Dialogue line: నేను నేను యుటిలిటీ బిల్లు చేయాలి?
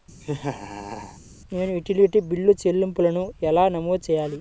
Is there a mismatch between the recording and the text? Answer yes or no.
yes